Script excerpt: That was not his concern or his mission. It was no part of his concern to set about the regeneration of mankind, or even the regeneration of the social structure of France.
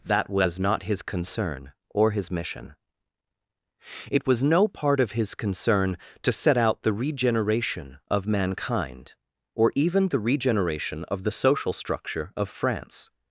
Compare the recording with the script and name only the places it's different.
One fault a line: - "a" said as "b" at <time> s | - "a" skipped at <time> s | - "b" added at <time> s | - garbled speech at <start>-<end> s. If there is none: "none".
- "about" said as "out" at 6.6 s